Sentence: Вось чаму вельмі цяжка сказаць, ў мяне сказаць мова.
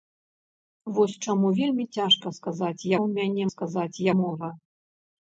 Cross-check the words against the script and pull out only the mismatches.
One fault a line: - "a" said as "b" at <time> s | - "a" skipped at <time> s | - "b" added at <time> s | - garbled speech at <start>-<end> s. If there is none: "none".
none